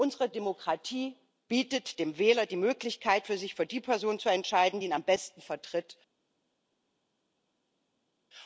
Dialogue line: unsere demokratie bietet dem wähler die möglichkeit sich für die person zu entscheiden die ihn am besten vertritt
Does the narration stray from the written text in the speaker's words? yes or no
no